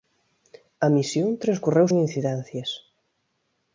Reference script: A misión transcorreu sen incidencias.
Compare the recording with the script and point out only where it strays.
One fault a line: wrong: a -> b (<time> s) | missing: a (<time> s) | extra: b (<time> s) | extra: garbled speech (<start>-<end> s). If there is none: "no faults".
no faults